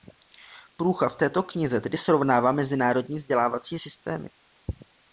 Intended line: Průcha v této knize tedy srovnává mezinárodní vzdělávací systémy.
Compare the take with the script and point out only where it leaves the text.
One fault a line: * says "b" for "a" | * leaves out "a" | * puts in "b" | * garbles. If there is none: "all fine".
all fine